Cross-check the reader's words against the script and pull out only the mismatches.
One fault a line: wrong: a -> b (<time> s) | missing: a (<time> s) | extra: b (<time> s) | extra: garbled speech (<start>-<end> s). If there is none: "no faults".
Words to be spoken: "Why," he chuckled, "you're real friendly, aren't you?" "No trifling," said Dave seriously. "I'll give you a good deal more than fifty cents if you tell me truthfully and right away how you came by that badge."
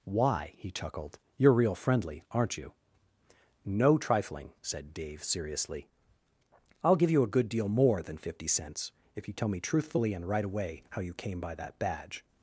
no faults